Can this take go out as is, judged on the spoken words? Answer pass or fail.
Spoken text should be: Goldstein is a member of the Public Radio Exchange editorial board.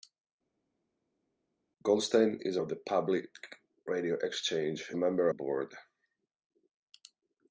fail